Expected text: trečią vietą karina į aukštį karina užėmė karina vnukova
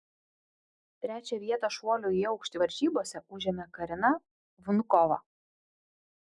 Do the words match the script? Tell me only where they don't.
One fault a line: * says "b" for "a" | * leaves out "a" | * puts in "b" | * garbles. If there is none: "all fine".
* says "šuolių" for "karina"
* says "varžybose" for "karina"